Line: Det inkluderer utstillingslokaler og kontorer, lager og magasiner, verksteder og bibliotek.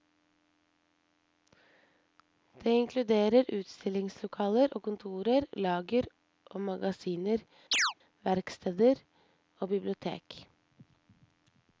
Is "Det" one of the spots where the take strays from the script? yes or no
no